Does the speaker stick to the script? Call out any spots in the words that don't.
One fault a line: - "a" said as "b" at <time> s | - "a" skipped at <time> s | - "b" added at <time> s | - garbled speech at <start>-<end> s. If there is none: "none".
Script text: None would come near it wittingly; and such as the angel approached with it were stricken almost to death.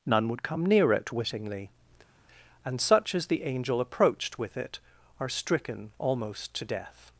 - "were" said as "are" at 5.2 s